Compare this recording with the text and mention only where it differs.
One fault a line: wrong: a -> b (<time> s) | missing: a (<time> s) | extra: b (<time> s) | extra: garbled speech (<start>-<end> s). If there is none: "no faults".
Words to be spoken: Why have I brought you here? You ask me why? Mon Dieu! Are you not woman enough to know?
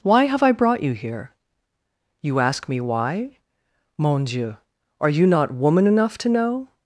no faults